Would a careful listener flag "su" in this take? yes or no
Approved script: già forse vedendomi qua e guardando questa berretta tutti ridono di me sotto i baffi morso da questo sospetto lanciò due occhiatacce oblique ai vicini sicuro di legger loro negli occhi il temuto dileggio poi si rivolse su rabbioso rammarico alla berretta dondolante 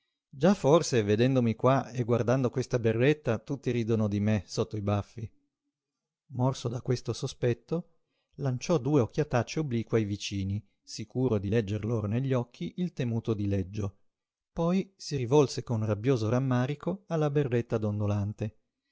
yes